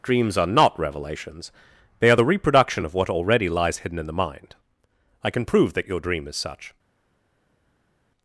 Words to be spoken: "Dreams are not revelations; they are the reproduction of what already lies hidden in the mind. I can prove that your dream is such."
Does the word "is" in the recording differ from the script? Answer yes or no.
no